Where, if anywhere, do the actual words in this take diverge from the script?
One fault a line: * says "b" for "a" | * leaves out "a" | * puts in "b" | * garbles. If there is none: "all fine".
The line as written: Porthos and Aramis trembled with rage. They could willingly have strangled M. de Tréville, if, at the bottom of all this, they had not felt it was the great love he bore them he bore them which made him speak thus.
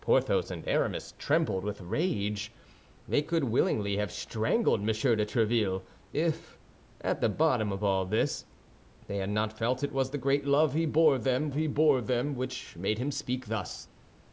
all fine